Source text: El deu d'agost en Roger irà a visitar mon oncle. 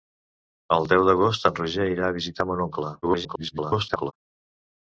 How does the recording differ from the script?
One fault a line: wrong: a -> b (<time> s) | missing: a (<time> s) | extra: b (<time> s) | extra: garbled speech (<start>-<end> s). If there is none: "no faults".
extra: garbled speech (3.0-4.1 s)